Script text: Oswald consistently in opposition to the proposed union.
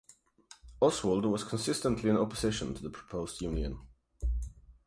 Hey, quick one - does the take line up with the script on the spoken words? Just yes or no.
no